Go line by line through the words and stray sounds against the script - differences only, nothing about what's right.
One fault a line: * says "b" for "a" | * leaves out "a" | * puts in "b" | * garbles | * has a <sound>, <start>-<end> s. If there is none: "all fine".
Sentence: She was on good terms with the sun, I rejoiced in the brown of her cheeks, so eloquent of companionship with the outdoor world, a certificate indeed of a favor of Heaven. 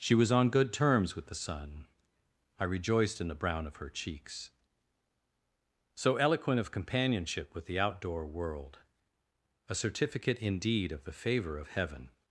* says "the" for "a"